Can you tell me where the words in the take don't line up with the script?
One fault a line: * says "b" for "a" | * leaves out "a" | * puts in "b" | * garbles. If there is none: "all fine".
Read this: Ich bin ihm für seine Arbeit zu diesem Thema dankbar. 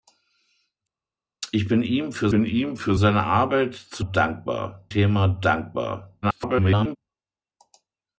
* puts in "bin ihm für"
* says "dankbar" for "diesem"
* garbles